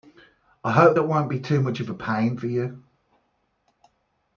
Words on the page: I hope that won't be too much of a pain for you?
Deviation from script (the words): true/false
false